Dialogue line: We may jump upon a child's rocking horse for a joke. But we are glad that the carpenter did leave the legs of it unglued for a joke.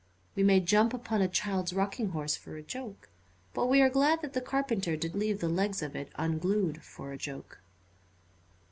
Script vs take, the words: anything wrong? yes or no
no